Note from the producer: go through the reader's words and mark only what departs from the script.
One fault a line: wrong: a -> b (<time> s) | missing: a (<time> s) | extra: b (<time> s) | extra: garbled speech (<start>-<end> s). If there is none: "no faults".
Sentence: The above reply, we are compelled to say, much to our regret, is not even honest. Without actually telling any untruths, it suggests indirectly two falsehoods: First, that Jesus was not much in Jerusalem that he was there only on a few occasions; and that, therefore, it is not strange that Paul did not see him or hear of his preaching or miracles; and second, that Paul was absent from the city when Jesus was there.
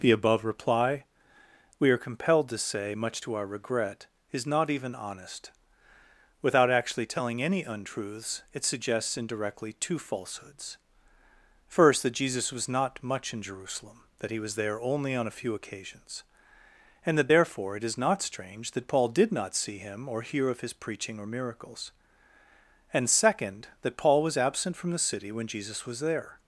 no faults